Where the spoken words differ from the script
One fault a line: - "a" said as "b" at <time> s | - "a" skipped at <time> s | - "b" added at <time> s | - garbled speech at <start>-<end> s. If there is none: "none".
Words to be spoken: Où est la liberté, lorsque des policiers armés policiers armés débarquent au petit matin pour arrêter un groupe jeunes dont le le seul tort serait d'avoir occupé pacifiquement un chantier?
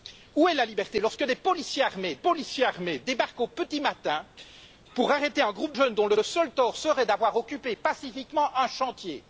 none